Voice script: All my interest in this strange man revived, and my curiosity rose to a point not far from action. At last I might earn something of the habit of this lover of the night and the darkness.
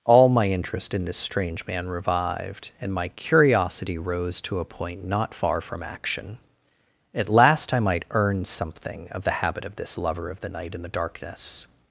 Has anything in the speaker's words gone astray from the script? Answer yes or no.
no